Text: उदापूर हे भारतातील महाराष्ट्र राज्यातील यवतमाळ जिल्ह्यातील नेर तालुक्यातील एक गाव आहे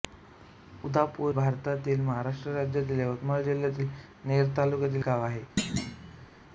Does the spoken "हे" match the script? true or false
false